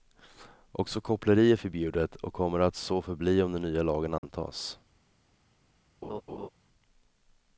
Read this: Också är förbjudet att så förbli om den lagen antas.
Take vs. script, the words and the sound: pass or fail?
fail